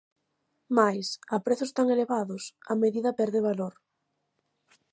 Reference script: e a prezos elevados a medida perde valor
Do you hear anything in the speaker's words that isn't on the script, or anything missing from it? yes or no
yes